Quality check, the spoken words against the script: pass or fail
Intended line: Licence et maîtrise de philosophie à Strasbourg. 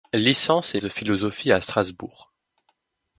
fail